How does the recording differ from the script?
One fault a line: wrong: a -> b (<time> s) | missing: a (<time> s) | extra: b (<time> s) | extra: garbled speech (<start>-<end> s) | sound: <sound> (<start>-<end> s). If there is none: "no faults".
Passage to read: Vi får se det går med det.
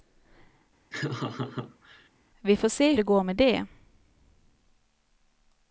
sound: laugh (0.9-2.1 s)